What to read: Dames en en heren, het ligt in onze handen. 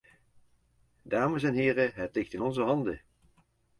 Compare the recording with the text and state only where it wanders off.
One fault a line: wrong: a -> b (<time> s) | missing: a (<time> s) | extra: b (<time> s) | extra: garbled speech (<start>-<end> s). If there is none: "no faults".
missing: en (1.5 s)